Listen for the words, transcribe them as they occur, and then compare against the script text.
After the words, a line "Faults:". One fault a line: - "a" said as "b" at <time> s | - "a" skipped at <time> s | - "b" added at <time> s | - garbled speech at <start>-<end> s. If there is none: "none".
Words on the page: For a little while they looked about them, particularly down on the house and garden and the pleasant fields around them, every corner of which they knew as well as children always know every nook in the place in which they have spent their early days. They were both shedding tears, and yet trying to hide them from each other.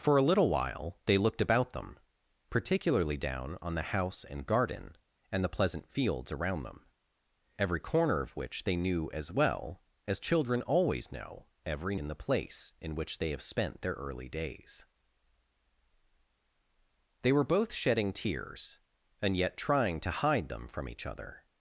For a little while they looked about them, particularly down on the house and garden and the pleasant fields around them, every corner of which they knew as well as children always know every in the place in which they have spent their early days. They were both shedding tears, and yet trying to hide them from each other.
Faults:
- "nook" skipped at 11.9 s